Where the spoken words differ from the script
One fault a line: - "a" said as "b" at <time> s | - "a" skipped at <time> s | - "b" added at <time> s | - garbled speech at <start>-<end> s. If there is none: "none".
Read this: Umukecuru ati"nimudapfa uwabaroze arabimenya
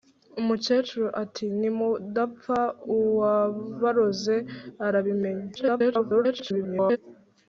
- garbled speech at 5.5-7.0 s